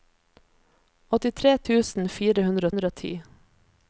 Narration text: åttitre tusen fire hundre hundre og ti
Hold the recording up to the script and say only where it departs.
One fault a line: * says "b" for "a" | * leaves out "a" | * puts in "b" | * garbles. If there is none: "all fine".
all fine